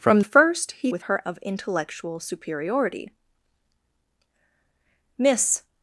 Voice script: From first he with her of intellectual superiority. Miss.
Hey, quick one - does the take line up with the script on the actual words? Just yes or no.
yes